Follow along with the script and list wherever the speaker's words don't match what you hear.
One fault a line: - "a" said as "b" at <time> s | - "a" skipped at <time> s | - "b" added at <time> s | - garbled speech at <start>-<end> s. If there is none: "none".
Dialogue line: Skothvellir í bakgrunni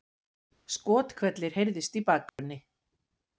- "heyrðust" added at 1.6 s